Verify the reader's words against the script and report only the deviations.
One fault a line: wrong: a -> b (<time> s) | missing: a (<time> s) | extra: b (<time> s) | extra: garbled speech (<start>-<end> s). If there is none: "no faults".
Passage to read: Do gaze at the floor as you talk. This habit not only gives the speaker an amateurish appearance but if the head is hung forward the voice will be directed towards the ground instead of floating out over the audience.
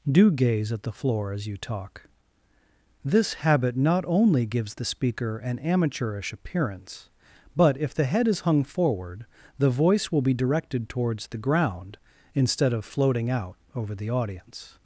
no faults